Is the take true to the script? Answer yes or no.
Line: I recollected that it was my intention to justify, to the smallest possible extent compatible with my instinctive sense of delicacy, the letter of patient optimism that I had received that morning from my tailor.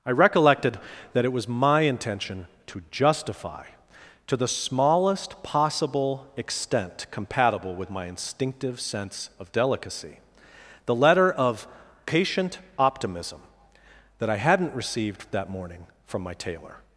no